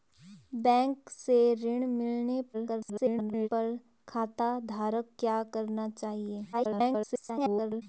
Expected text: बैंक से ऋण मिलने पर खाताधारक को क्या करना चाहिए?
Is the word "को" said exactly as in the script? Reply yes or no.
no